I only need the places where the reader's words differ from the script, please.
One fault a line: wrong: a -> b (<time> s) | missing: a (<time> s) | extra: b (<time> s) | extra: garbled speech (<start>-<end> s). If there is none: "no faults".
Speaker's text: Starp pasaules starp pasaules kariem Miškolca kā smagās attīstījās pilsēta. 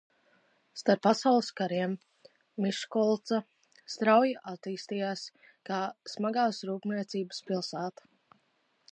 wrong: starp pasaules kariem Miškolca -> kariem Miškolca strauji attīstījās (1.6 s)
wrong: attīstījās -> rūpniecības (6.7 s)